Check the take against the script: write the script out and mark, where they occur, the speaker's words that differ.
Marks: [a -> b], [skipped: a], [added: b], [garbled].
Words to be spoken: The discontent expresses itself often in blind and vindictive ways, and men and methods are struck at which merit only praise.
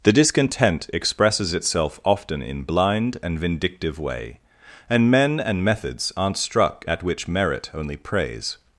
The discontent expresses itself often in blind and vindictive [ways, -> way] and men and methods [are -> aren't] struck at which merit only praise.